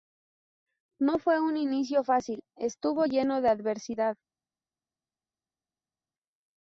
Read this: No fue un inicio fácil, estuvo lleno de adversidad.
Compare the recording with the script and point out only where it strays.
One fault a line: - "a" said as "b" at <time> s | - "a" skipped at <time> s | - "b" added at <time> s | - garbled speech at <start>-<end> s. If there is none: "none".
none